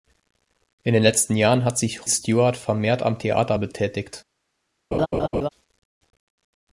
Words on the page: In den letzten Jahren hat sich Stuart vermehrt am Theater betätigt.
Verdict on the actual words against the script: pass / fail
pass